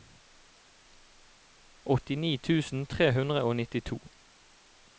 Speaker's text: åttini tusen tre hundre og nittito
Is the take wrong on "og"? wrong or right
right